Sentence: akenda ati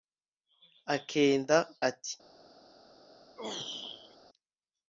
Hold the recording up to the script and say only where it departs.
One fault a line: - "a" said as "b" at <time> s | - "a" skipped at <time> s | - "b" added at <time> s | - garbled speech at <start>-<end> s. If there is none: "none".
none